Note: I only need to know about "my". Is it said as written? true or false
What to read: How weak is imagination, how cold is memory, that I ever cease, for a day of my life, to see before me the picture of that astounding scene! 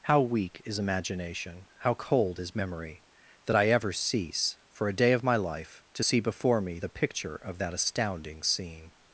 true